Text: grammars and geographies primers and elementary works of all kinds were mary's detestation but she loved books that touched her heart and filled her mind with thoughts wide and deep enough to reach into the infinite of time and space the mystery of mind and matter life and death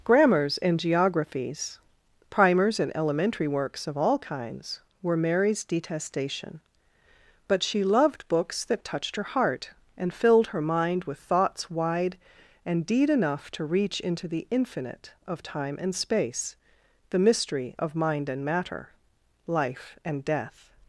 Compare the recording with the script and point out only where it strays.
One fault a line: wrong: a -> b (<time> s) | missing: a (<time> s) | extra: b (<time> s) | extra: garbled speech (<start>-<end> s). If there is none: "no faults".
wrong: deep -> deed (12.9 s)